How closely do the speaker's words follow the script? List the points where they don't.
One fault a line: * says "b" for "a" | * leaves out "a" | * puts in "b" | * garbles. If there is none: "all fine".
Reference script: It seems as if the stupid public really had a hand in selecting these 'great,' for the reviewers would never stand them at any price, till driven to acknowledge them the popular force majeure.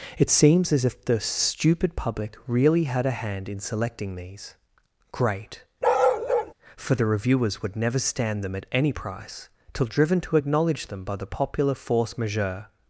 * puts in "by"